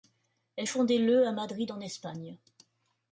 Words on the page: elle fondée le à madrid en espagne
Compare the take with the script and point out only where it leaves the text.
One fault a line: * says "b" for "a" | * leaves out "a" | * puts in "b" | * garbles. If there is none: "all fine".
all fine